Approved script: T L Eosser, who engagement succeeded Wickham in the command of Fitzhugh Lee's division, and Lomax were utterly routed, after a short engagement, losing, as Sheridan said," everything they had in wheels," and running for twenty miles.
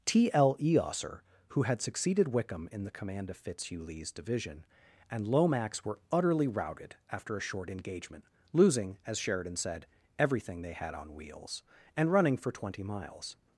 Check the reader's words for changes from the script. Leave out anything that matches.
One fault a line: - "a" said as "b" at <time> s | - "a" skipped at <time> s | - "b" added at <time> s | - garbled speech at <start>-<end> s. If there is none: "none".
- "engagement" said as "had" at 1.6 s
- "in" said as "on" at 10.9 s